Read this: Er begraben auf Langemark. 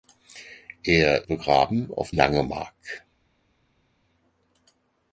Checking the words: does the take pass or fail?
pass